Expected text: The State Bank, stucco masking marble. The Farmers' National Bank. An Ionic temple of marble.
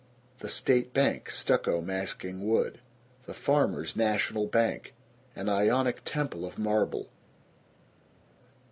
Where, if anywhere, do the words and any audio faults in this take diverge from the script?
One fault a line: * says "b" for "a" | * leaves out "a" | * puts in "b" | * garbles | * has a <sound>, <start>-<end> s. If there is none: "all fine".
* says "wood" for "marble"